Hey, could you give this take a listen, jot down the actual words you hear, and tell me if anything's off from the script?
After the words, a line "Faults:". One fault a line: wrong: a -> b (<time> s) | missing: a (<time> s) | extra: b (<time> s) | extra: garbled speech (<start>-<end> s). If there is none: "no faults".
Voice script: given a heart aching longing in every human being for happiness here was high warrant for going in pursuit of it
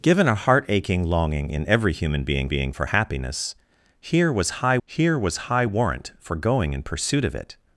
given a heart aching longing in every human being being for happiness here was high here was high warrant for going in pursuit of it
Faults:
extra: being (2.5 s)
extra: here was high (4.8 s)